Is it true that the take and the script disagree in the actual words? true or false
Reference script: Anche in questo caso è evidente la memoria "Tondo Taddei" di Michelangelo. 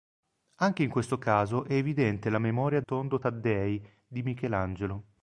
false